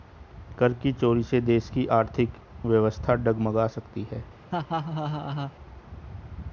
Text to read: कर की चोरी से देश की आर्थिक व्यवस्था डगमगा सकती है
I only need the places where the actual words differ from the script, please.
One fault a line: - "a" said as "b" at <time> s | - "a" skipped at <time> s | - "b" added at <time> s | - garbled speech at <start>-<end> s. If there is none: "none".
none